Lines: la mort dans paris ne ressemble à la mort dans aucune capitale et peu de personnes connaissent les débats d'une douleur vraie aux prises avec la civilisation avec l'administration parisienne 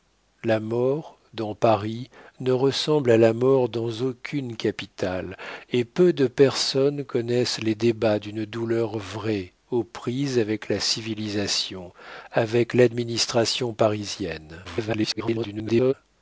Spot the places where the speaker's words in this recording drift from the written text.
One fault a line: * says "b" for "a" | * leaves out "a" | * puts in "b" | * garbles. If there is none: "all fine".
* garbles